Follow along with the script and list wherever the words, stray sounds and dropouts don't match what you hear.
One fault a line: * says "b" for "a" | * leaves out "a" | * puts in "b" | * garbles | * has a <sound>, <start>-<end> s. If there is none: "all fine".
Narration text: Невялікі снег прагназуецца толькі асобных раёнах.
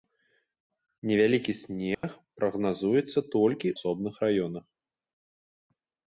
* has a dropout, 1.9-2.0 s